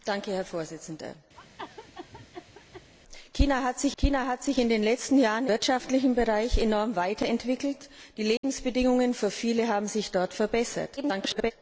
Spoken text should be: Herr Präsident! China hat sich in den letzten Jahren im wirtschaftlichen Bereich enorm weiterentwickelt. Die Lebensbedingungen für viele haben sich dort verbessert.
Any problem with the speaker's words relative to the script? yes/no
yes